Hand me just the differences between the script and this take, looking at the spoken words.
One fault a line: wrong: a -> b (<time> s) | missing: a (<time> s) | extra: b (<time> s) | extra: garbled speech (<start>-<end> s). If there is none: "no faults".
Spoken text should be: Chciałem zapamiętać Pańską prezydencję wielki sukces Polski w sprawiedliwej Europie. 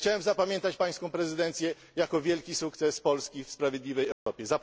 extra: jako (2.0 s)